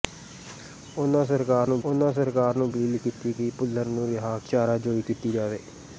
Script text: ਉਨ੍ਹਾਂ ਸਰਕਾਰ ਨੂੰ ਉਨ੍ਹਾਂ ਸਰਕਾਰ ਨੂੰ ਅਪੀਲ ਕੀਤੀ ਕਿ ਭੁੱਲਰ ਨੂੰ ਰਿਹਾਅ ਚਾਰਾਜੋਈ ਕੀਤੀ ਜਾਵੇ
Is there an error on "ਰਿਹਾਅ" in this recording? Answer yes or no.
no